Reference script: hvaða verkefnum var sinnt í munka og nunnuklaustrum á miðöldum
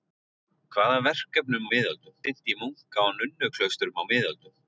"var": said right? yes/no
no